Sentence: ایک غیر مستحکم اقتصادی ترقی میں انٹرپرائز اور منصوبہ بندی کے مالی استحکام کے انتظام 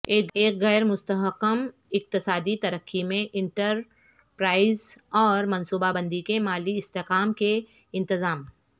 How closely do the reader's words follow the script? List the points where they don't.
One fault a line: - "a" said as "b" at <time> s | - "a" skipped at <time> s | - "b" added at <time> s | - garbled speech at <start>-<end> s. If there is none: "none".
none